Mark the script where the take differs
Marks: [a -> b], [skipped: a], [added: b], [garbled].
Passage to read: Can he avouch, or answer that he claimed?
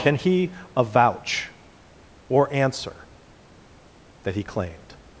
Can he avouch, or answer that he claimed?